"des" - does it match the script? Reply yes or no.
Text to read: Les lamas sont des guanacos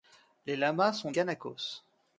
no